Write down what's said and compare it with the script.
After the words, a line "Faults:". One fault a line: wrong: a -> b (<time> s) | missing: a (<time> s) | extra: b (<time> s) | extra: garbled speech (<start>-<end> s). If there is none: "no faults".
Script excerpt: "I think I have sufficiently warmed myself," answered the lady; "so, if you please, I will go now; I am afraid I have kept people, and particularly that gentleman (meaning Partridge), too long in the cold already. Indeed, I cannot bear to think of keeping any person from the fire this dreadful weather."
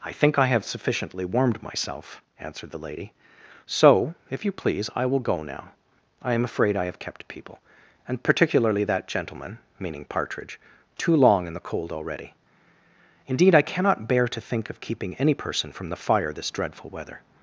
"I think I have sufficiently warmed myself," answered the lady; "so, if you please, I will go now; I am afraid I have kept people, and particularly that gentleman (meaning Partridge), too long in the cold already. Indeed, I cannot bear to think of keeping any person from the fire this dreadful weather."
Faults:
no faults